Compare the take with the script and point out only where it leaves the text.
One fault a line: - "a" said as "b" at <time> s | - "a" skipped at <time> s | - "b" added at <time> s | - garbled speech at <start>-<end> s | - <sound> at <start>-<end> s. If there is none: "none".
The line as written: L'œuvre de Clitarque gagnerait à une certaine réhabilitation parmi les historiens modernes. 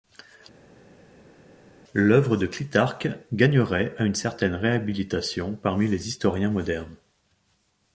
none